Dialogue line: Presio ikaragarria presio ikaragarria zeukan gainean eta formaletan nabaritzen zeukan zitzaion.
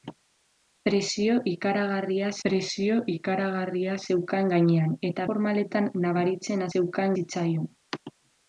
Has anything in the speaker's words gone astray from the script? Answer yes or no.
no